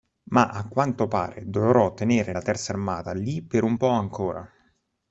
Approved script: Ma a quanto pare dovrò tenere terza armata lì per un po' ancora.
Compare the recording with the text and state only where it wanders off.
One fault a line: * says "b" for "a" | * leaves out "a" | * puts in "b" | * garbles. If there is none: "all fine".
* puts in "la"